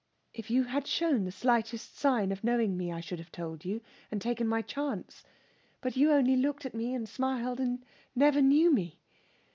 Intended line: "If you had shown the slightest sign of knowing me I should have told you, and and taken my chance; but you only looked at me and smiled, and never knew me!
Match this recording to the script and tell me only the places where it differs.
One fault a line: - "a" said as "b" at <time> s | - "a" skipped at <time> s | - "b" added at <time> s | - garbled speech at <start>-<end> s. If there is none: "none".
- "and" skipped at 4.2 s